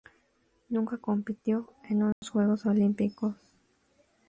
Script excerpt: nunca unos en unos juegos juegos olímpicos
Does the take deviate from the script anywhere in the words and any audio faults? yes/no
yes